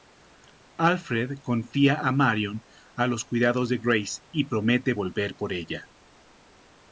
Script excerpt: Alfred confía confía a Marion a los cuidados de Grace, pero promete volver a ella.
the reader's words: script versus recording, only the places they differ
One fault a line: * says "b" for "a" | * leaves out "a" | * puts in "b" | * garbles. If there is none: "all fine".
* leaves out "confía"
* says "y" for "pero"
* says "por" for "a"